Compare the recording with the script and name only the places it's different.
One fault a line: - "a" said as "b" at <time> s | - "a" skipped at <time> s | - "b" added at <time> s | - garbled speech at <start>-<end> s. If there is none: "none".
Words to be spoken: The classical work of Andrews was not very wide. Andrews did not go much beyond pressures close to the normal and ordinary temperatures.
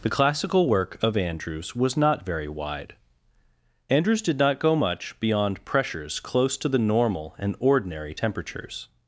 none